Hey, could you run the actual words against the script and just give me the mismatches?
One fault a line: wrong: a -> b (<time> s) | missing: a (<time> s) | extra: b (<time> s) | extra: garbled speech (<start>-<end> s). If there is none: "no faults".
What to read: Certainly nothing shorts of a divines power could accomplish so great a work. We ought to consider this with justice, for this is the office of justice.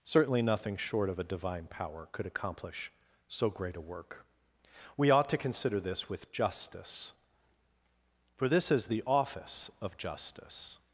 wrong: shorts -> short (0.8 s)
wrong: divines -> divine (1.2 s)